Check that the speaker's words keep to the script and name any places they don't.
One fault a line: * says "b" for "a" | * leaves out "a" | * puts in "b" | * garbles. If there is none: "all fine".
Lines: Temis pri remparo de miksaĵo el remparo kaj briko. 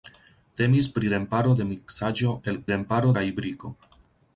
all fine